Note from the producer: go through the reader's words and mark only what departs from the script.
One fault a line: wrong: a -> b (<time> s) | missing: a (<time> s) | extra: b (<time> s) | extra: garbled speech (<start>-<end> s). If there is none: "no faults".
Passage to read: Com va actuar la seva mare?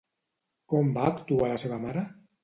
no faults